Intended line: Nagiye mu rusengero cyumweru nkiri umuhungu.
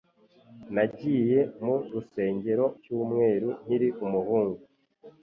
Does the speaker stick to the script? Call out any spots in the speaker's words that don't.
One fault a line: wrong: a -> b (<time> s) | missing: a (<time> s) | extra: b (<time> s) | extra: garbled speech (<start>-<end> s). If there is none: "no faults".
no faults